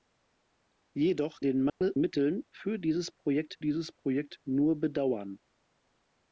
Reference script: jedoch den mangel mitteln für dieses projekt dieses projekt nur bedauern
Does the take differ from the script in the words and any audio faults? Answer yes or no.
yes